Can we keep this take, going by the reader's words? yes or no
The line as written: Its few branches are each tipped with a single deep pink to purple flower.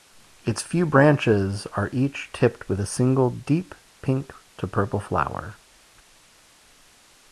yes